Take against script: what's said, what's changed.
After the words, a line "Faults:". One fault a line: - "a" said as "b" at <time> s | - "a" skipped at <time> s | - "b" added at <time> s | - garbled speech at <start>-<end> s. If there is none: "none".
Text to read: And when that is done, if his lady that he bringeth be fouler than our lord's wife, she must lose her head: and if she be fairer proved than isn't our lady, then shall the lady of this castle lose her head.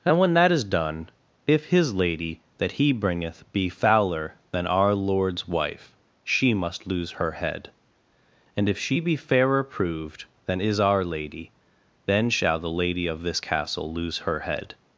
And when that is done, if his lady that he bringeth be fouler than our lord's wife, she must lose her head: and if she be fairer proved than is our lady, then shall the lady of this castle lose her head.
Faults:
- "isn't" said as "is" at 10.6 s